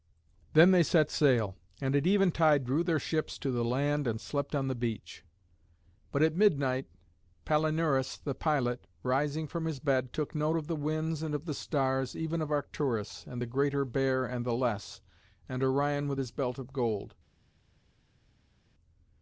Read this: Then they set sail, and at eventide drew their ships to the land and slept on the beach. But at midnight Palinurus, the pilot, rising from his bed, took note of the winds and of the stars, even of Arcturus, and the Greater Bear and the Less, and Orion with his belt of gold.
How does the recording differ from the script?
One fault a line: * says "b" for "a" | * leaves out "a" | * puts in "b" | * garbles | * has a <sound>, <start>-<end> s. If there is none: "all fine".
all fine